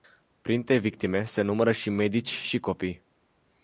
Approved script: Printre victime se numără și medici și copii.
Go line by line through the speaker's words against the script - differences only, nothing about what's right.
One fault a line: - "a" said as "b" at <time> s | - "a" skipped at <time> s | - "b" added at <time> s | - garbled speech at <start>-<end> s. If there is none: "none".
none